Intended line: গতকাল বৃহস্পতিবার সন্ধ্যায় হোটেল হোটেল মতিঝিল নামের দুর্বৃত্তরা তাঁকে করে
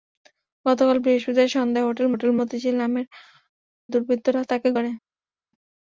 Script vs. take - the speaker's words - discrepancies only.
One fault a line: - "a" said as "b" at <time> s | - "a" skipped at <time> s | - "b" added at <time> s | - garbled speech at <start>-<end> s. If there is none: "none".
none